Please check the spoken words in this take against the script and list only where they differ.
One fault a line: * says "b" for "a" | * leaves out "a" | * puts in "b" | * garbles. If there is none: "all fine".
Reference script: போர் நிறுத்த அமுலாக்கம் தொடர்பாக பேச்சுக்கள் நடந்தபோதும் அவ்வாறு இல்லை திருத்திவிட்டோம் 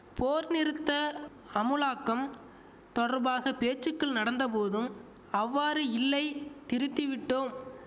all fine